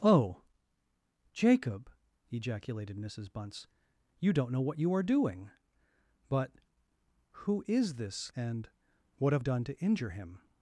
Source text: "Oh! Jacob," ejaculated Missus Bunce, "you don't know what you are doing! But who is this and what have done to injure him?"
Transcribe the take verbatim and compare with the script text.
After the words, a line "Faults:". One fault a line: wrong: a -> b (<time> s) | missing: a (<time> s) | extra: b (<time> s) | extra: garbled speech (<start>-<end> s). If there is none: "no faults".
"Oh! Jacob," ejaculated Missus Bunce, "you don't know what you are doing! But who is this and what have done to injure him?"
Faults:
no faults